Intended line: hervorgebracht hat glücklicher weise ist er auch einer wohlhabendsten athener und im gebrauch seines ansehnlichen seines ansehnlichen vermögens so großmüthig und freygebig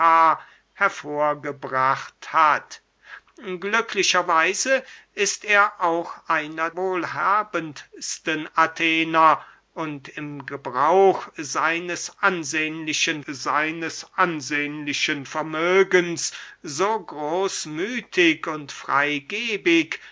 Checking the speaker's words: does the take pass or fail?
pass